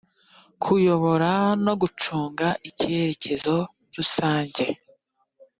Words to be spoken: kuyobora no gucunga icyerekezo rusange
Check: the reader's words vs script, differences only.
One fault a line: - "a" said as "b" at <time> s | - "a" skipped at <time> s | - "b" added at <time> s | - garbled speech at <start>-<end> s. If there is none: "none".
none